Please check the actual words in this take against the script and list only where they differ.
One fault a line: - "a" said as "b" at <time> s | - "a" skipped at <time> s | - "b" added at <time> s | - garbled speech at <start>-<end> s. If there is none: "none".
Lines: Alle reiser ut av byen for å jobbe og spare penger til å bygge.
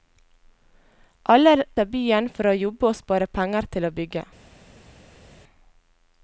- "reiser ut" skipped at 1.5 s